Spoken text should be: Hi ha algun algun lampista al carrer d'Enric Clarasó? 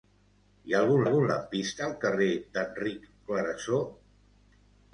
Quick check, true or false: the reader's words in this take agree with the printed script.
true